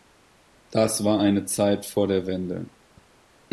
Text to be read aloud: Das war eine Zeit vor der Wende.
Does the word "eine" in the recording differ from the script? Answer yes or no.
no